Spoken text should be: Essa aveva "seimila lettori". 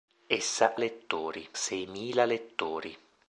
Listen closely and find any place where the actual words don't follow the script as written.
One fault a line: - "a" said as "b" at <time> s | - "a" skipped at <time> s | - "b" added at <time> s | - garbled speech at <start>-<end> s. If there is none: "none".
- "aveva" said as "lettori" at 0.7 s